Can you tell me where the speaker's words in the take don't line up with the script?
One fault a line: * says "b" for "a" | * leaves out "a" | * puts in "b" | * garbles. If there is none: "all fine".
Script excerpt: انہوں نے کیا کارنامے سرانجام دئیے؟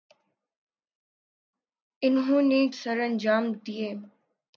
* leaves out "کیا کارنامے"